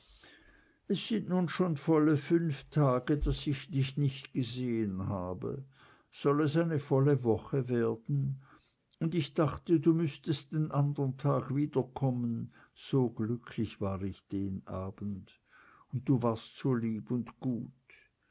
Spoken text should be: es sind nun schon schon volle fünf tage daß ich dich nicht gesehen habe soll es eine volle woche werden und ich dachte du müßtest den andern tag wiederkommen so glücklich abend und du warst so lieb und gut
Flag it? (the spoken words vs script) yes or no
yes